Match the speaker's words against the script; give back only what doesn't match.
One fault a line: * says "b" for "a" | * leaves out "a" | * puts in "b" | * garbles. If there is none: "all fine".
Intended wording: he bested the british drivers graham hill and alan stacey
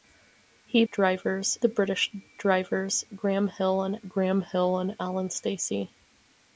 * says "drivers" for "bested"
* puts in "graham hill and"